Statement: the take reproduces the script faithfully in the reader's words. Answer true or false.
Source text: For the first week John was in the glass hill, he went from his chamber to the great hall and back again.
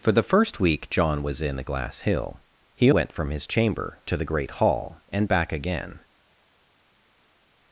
true